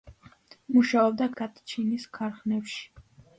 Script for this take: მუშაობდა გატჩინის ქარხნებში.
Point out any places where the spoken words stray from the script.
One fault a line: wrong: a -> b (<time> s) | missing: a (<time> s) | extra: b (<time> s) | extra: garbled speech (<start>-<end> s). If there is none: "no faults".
no faults